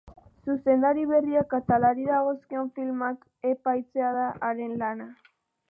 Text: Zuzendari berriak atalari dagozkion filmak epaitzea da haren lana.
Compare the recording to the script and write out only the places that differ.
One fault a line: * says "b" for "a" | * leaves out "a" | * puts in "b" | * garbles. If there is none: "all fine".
all fine